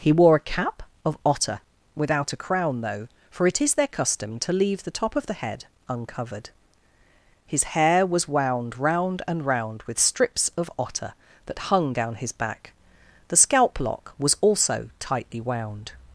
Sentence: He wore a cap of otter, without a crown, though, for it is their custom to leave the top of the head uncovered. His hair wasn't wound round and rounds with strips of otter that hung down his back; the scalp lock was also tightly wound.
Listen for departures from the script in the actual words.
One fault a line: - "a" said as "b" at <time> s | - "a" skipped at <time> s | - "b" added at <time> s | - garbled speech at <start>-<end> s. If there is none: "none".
- "wasn't" said as "was" at 8.0 s
- "rounds" said as "round" at 9.4 s